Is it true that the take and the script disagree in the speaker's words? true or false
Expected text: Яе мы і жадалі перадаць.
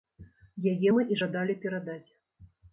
false